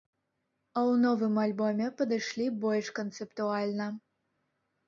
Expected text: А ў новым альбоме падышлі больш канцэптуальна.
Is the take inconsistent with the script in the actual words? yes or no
no